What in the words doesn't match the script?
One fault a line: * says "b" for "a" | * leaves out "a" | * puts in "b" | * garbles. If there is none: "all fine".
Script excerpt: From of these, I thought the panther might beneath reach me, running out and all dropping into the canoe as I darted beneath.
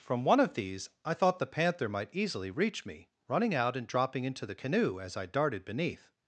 * puts in "one"
* says "easily" for "beneath"
* leaves out "all"